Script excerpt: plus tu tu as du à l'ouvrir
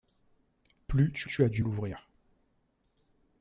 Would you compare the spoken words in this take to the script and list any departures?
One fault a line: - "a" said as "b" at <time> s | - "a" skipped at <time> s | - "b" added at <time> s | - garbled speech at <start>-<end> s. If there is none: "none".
none